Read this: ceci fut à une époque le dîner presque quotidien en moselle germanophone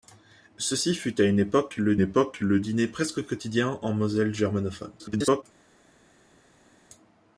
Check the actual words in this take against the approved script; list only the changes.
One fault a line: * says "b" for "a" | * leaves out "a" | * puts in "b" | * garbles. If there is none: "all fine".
* puts in "époque le"
* garbles